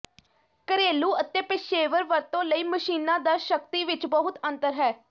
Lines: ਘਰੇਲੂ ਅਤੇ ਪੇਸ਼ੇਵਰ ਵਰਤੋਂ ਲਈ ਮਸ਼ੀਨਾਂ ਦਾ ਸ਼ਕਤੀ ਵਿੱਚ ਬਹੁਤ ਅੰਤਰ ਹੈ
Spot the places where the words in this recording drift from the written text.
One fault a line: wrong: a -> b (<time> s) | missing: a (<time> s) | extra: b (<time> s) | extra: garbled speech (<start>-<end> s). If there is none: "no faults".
no faults